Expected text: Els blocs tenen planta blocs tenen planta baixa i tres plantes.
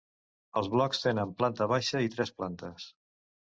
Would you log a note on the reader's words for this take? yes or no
yes